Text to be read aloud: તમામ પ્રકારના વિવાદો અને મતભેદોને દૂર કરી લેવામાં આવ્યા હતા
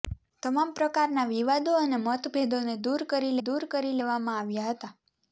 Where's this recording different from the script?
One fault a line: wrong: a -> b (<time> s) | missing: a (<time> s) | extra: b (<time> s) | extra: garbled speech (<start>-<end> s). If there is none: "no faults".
extra: દૂર કરી (3.4 s)